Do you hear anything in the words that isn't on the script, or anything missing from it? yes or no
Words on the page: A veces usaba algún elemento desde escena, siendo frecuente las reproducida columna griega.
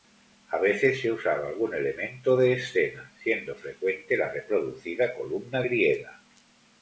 yes